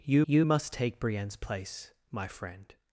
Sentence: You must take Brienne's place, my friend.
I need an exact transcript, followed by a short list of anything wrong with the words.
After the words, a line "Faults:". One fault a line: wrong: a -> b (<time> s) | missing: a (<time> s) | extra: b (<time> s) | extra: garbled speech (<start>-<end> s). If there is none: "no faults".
You you must take Brienne's place, my friend.
Faults:
extra: you (0.2 s)